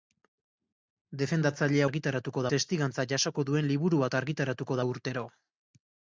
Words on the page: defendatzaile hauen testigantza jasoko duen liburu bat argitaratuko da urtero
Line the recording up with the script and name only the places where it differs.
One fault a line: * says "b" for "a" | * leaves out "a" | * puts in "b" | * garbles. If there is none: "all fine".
* says "argitaratuko" for "hauen"